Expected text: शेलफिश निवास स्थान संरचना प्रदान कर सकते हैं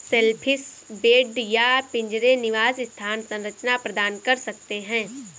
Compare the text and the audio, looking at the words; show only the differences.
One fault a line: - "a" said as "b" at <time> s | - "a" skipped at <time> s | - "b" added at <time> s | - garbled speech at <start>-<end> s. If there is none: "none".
- "बेड या पिंजरे" added at 1.0 s